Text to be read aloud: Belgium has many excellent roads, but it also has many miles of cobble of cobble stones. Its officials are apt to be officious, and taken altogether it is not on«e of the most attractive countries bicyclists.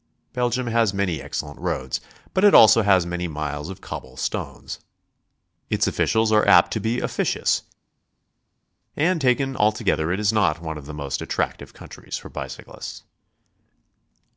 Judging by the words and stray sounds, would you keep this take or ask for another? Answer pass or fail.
fail